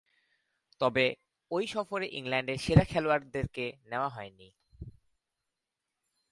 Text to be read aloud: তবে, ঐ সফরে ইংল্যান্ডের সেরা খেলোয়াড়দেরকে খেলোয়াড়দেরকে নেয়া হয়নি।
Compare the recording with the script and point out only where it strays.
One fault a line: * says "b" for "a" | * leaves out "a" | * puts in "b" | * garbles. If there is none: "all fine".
* leaves out "খেলোয়াড়দেরকে"